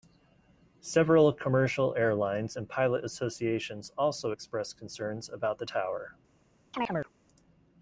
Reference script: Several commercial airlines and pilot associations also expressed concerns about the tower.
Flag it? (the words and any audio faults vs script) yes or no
yes